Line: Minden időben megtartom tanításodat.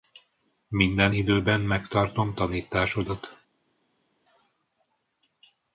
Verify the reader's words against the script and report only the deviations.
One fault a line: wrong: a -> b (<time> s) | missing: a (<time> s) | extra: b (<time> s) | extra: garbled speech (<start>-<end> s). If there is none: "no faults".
no faults